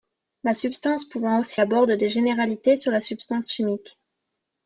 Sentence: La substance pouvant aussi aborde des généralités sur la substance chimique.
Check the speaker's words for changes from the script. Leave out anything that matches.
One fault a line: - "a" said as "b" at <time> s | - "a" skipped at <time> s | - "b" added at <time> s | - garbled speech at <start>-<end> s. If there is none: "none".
none